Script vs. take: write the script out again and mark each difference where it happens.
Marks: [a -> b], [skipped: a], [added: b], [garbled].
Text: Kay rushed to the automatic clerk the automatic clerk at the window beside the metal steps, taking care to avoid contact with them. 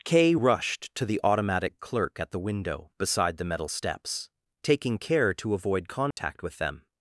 Kay rushed to the automatic clerk [skipped: the automatic clerk] at the window beside the metal steps, taking care to avoid contact with them.